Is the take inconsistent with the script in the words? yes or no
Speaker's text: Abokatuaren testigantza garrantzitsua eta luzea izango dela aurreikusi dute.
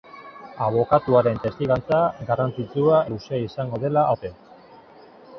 yes